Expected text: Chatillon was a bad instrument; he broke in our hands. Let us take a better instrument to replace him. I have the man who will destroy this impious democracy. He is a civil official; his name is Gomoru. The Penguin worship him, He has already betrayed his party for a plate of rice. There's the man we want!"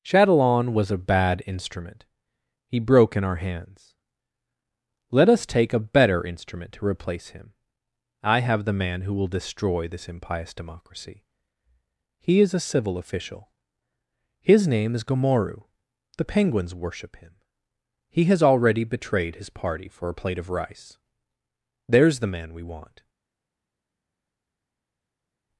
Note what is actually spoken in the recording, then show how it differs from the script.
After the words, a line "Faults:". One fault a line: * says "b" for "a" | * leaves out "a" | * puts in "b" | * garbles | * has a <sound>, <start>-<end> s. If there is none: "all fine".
Chatillon was a bad instrument; he broke in our hands. Let us take a better instrument to replace him. I have the man who will destroy this impious democracy. He is a civil official; his name is Gomoru. The Penguins worship him, He has already betrayed his party for a plate of rice. There's the man we want!"
Faults:
* says "Penguins" for "Penguin"